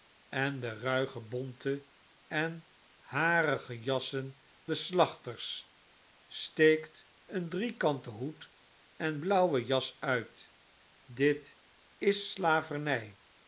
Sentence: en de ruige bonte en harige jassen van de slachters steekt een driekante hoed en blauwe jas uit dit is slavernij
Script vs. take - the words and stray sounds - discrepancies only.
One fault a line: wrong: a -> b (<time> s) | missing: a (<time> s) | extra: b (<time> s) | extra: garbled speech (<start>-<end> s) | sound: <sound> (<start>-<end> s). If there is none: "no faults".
missing: van (4.4 s)